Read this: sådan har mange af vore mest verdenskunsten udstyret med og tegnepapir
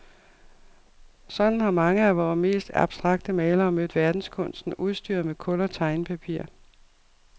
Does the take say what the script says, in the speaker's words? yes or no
no